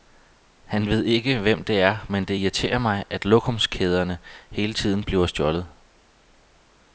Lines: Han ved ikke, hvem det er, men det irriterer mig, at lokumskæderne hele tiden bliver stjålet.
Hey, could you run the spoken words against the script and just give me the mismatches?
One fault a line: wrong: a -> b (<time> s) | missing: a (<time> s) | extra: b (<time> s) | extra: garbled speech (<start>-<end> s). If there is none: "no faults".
no faults